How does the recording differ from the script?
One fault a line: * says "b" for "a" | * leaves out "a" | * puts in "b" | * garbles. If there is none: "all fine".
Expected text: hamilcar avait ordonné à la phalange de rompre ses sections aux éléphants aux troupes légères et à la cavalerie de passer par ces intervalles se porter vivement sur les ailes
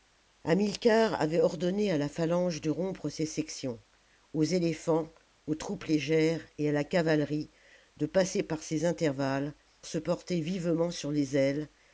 all fine